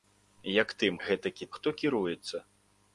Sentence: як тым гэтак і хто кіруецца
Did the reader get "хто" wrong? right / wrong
right